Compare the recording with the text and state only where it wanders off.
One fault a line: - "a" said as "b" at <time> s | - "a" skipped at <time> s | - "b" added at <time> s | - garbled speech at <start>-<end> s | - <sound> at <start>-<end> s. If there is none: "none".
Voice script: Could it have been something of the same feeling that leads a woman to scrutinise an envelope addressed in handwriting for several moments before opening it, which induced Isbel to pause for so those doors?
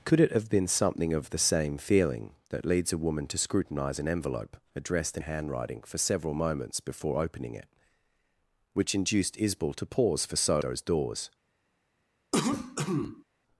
- cough at 12.3-13.2 s